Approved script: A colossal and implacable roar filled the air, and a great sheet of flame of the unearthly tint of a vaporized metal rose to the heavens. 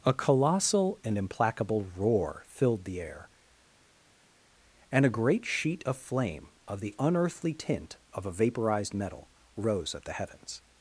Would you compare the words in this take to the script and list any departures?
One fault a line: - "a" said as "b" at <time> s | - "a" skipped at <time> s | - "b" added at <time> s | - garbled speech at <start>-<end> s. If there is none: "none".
- "to" said as "at" at 9.9 s